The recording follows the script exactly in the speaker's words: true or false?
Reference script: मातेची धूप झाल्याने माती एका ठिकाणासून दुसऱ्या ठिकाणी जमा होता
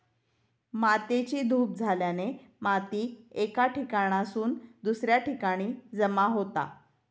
true